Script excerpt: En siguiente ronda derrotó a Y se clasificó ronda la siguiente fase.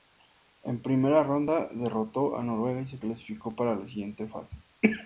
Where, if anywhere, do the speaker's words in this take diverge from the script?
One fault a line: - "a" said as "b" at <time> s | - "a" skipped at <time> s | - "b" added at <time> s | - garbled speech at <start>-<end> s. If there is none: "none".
- "siguiente" said as "primera" at 0.8 s
- "Noruega" added at 2.4 s
- "ronda" said as "para" at 3.5 s